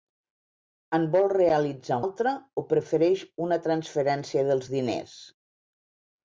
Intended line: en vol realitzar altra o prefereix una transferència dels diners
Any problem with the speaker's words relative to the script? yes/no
no